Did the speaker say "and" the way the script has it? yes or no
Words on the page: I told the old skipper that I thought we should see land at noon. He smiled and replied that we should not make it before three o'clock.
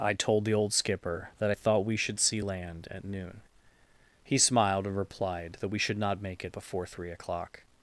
yes